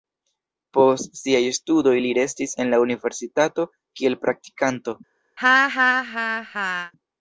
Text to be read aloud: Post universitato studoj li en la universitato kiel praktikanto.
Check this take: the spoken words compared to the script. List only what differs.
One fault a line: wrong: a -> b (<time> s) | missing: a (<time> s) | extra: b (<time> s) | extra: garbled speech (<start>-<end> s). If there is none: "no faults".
wrong: universitato -> siaj (1.2 s)
extra: restis (2.2 s)